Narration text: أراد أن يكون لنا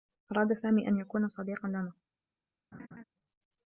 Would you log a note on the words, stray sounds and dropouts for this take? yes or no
yes